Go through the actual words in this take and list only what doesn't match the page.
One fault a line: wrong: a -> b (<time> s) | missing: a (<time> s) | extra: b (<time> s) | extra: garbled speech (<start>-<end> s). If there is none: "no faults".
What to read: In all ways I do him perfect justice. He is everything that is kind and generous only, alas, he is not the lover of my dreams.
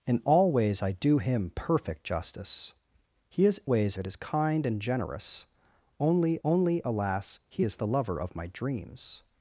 wrong: everything -> ways (3.7 s)
extra: only (6.4 s)
missing: not (7.8 s)